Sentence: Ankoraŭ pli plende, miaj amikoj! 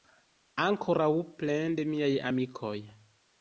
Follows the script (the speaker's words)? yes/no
no